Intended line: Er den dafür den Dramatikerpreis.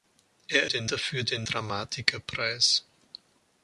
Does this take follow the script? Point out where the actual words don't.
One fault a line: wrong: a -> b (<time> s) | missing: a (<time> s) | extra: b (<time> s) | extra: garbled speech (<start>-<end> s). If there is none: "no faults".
no faults